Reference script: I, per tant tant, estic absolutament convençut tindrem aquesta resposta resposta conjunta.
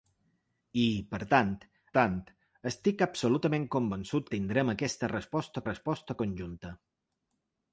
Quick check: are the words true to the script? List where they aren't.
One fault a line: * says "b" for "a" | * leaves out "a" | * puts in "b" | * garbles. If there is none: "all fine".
all fine